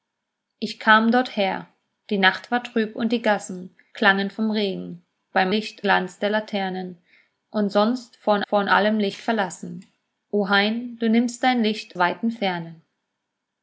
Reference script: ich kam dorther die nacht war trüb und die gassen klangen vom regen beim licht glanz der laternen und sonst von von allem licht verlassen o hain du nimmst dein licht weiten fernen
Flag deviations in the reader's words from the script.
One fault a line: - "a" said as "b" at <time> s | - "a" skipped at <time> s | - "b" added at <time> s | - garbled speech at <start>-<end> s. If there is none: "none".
none